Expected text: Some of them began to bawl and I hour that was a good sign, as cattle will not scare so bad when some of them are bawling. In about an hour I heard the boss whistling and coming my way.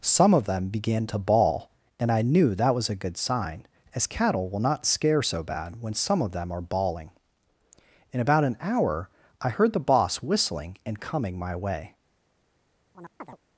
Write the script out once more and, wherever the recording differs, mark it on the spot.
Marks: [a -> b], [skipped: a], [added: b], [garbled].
Some of them began to bawl and I [hour -> knew] that was a good sign, as cattle will not scare so bad when some of them are bawling. In about an hour I heard the boss whistling and coming my way.